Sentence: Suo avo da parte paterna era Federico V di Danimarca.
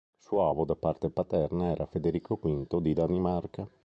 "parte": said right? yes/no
yes